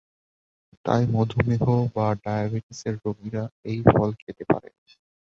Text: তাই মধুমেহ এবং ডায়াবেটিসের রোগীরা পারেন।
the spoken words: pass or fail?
fail